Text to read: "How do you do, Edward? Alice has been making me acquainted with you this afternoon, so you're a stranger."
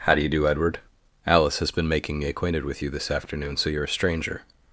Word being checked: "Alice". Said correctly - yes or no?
yes